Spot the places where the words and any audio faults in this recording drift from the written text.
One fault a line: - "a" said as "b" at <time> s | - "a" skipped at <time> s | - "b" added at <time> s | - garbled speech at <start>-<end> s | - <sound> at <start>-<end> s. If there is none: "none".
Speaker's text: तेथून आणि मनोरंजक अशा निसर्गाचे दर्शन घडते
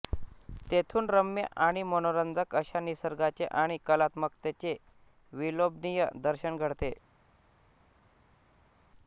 - "रम्य" added at 1.1 s
- "आणि कलात्मकतेचे विलोभनीय" added at 3.5 s